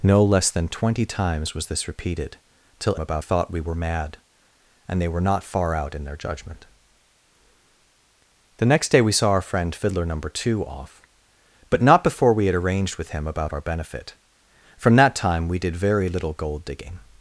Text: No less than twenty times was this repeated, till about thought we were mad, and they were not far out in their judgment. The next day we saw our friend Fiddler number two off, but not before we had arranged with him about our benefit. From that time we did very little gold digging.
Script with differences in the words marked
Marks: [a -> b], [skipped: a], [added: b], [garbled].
No less than twenty times was this repeated, till about thought we were mad, and they were not far out in their judgment. The next day we saw our friend Fiddler number two off, but not before we had arranged with him about our benefit. From that time we did very little gold digging.